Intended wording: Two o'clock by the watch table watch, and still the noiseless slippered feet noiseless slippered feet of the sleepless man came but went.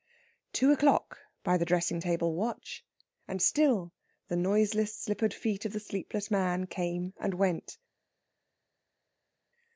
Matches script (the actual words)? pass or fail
fail